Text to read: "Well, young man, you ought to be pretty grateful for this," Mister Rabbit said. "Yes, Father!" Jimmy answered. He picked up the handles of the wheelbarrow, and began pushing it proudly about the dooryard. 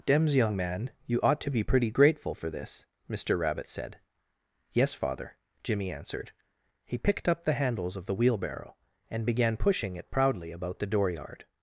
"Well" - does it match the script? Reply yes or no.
no